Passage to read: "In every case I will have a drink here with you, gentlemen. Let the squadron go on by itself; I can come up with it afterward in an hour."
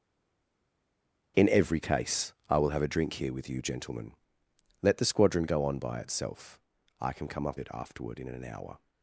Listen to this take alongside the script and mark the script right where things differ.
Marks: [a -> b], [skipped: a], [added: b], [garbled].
"In every case I will have a drink here with you, gentlemen. Let the squadron go on by itself; I can come up [skipped: with] it afterward in an hour."